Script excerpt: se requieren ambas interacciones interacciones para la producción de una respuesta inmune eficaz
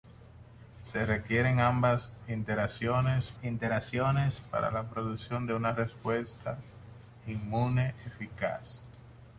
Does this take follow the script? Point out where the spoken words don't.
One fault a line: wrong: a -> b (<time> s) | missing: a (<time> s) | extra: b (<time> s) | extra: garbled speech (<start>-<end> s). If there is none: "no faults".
no faults